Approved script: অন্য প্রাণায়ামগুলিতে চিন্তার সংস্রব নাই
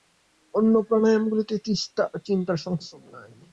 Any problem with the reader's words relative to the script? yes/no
no